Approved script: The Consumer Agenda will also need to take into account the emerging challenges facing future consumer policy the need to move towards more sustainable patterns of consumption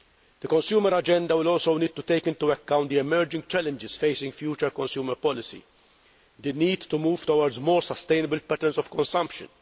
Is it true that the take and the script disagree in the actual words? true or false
false